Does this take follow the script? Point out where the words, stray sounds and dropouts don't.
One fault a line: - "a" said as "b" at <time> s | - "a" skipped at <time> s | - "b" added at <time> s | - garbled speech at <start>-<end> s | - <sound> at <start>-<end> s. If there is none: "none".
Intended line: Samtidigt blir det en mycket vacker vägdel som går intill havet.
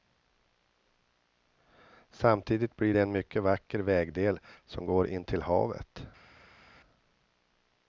none